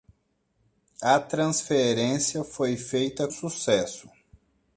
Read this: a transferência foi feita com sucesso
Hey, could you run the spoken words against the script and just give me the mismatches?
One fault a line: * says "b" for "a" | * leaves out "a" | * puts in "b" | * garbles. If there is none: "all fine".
* leaves out "com"